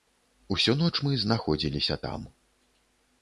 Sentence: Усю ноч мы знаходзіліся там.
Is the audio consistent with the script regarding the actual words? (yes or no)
yes